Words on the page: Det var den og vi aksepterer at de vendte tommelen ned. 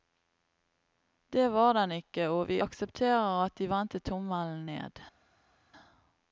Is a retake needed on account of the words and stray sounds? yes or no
yes